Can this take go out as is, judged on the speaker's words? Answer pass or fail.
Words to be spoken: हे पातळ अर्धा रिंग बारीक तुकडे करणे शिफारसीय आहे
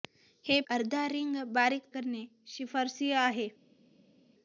fail